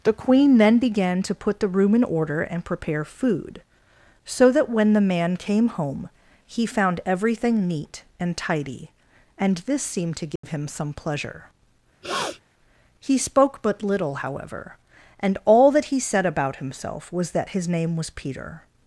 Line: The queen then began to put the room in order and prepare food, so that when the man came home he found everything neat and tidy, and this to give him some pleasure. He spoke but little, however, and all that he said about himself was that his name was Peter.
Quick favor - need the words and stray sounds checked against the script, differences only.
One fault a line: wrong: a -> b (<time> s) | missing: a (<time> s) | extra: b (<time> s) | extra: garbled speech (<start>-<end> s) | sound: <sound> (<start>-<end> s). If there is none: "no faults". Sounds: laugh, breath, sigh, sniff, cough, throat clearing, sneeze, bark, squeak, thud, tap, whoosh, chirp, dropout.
extra: seemed (9.8 s)
sound: dropout (10.4-10.4 s)
sound: sniff (12.0-12.4 s)